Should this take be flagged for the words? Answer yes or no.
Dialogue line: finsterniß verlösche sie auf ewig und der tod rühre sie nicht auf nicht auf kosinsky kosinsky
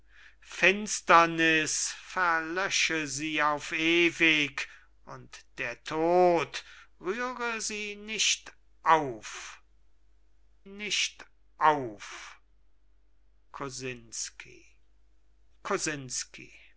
no